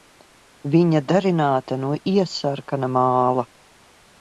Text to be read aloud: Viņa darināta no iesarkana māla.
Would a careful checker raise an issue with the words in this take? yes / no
no